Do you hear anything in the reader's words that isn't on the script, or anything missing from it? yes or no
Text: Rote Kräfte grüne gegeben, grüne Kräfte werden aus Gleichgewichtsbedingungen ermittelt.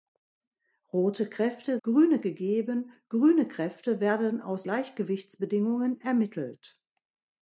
no